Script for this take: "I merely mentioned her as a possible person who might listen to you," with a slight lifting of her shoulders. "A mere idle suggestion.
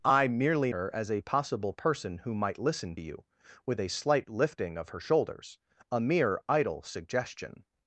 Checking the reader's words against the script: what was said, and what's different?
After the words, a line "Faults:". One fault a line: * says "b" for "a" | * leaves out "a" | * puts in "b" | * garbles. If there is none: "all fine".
"I merely her as a possible person who might listen you," with a slight lifting of her shoulders. "A mere idle suggestion.
Faults:
* leaves out "mentioned"
* leaves out "to"